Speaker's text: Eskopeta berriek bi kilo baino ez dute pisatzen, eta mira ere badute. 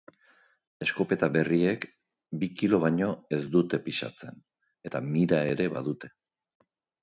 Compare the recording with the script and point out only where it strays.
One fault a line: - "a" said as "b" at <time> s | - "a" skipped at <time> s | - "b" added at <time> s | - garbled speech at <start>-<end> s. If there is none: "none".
none